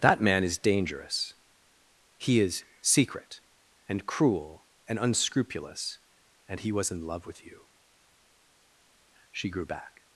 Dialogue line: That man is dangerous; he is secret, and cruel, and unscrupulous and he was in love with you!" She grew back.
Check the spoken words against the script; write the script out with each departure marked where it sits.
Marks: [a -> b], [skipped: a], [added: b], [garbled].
That man is dangerous; he is secret, and cruel, and unscrupulous and he was in love with you!" She grew back.